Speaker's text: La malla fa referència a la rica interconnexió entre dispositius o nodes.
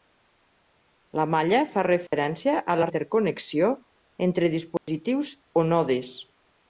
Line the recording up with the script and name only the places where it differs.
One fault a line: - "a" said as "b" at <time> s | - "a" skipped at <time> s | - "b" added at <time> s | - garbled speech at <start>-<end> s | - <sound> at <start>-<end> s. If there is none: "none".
- dropout at 2.1-2.1 s
- "rica" skipped at 2.9 s
- dropout at 4.8-4.9 s